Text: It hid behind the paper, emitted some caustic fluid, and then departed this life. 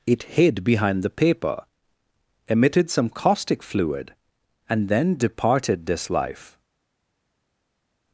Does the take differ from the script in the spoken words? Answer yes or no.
no